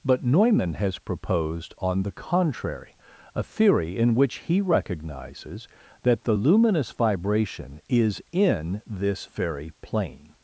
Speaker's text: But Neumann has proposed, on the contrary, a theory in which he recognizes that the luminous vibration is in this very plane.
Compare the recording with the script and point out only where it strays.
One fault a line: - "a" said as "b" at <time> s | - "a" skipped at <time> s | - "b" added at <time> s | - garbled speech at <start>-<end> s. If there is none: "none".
none